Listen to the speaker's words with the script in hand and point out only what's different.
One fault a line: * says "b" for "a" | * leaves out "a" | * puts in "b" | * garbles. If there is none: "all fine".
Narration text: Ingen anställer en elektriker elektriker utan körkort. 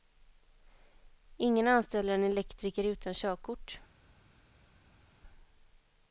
* leaves out "elektriker"